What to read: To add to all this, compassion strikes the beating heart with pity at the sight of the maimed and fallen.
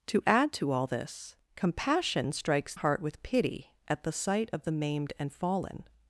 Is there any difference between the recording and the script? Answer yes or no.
yes